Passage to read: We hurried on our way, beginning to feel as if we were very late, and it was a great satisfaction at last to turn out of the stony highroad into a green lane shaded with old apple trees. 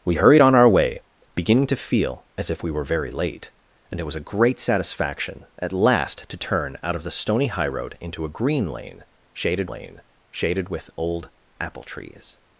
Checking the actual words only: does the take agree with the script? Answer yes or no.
no